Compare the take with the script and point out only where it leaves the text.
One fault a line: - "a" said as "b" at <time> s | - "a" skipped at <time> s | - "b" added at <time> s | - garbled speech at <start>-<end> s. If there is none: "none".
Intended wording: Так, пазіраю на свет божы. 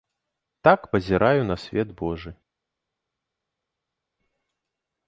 none